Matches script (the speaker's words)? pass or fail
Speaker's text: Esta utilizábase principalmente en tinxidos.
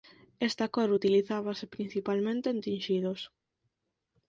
fail